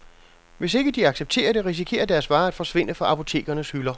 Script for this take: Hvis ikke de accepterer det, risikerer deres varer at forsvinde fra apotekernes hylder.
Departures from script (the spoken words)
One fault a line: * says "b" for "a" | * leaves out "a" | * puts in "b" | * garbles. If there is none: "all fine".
all fine